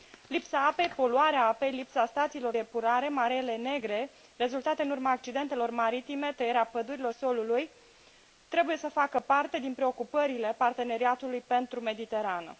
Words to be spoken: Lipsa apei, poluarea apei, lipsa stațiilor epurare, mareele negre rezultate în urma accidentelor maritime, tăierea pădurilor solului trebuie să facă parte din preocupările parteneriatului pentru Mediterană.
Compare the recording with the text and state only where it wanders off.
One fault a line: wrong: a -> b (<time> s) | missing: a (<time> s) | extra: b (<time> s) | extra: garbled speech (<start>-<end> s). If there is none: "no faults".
no faults